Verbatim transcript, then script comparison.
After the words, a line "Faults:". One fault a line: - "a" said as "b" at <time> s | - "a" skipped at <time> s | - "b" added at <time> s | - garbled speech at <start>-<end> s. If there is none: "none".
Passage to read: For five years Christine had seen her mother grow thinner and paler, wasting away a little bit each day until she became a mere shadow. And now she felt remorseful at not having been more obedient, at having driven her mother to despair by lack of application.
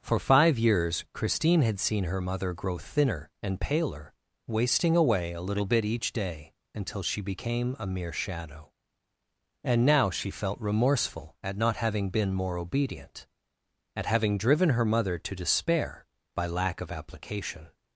For five years Christine had seen her mother grow thinner and paler, wasting away a little bit each day until she became a mere shadow. And now she felt remorseful at not having been more obedient, at having driven her mother to despair by lack of application.
Faults:
none